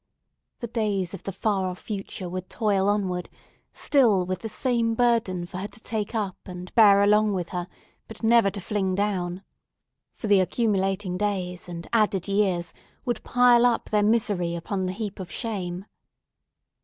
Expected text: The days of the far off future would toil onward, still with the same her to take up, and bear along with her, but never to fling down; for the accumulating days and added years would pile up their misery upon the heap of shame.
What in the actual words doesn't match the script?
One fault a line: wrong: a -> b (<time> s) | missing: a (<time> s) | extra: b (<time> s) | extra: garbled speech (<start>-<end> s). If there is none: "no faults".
extra: burden for (5.0 s)